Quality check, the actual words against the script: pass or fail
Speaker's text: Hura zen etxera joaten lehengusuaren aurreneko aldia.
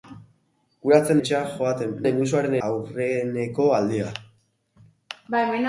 pass